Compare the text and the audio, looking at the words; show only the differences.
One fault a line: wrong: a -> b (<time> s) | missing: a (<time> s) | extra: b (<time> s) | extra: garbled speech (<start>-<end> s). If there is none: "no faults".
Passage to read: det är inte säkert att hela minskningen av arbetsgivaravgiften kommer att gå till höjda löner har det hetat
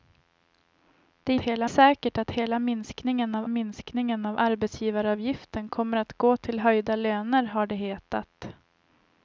wrong: inte -> hela (1.4 s)
extra: minskningen av (3.5 s)